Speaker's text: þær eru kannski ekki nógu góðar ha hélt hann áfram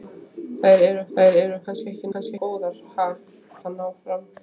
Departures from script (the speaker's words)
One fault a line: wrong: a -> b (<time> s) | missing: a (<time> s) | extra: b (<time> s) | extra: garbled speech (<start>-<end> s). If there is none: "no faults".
extra: þær eru (1.2 s)
wrong: nógu -> kannski (2.1 s)
missing: hélt (3.1 s)